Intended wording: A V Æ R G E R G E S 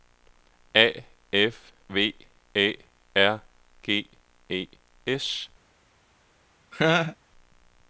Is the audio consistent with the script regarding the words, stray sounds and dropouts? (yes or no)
no